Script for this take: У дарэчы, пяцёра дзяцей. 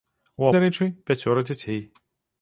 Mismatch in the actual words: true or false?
false